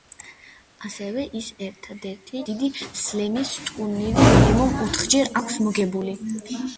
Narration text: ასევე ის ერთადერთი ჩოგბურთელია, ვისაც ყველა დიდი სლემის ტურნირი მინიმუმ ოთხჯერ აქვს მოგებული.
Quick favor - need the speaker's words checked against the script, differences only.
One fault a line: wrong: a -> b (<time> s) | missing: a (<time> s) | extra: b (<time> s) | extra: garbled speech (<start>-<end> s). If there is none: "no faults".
missing: ჩოგბურთელია ვისაც ყველა (2.4 s)